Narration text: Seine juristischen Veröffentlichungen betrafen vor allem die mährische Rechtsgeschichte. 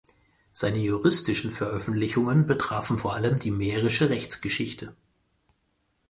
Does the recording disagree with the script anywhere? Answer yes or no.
no